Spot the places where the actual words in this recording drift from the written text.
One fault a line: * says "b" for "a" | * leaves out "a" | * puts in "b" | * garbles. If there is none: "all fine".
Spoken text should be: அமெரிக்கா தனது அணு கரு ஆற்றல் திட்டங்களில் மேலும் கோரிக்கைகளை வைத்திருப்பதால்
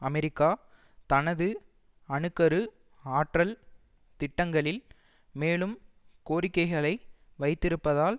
all fine